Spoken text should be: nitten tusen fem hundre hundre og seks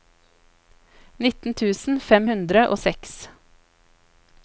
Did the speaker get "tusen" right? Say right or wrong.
right